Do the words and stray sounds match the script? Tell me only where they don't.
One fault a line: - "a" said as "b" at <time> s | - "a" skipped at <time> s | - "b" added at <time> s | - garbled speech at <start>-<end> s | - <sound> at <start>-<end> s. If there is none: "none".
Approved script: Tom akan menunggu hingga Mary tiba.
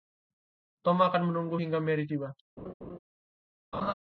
- laugh at 2.6-3.0 s
- laugh at 3.7-3.9 s